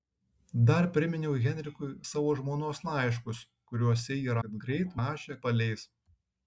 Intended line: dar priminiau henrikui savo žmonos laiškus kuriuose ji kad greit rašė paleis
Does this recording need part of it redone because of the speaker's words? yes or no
no